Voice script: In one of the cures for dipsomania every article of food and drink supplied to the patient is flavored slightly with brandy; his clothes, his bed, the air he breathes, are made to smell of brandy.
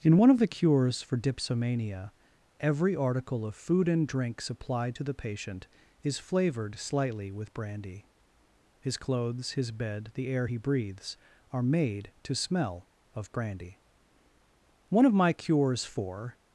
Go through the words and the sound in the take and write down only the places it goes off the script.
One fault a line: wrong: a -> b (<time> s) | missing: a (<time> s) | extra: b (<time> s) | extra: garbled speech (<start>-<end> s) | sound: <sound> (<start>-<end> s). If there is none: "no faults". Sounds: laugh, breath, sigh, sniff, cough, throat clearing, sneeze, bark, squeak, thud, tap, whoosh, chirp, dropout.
extra: One of my cures for (14.9 s)